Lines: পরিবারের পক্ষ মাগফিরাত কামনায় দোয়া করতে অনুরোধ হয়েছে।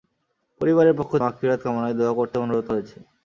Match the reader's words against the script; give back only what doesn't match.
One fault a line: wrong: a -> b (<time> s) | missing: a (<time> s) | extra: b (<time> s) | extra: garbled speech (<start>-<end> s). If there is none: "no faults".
no faults